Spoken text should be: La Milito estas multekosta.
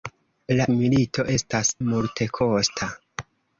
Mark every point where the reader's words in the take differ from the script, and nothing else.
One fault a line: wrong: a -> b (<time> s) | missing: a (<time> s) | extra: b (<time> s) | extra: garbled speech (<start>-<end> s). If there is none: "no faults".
no faults